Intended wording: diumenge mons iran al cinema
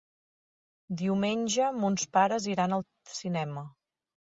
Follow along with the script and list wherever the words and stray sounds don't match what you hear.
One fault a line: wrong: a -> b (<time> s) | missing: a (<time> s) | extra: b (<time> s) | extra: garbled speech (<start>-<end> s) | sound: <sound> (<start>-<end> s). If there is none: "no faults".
extra: pares (2.2 s)